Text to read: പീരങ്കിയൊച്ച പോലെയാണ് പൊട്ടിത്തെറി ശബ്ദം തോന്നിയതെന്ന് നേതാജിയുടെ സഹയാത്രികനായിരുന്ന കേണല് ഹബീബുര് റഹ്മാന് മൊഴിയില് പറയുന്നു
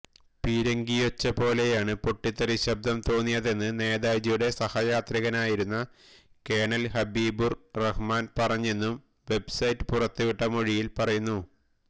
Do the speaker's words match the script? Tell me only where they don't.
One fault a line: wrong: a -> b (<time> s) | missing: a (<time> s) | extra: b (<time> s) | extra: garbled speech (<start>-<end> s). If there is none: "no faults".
extra: പറഞ്ഞെന്നും വെബ്സൈറ്റ് പുറത്തുവിട്ട (8.4 s)